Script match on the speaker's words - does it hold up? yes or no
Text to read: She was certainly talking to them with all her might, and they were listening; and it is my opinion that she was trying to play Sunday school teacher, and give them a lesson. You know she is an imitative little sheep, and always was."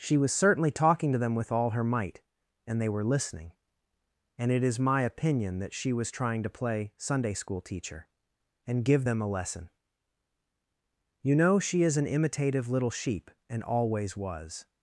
yes